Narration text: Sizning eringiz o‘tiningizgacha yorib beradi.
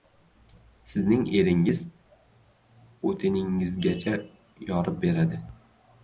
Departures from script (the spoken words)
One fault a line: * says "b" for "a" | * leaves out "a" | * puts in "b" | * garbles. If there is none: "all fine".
all fine